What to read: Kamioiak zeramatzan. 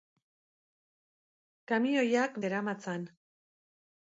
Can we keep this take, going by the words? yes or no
yes